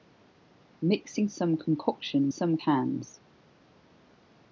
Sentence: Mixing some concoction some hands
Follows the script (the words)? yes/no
yes